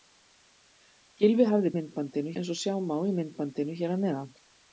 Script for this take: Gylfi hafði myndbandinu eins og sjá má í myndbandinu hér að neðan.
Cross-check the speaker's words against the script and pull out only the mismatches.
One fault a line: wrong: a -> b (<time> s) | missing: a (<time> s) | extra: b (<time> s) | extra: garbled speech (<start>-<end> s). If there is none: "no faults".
no faults